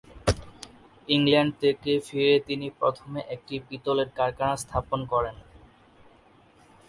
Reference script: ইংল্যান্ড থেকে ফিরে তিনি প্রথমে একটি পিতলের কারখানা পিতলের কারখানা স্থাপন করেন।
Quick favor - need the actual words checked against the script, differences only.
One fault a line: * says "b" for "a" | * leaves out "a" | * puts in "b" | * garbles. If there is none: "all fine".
* leaves out "পিতলের কারখানা"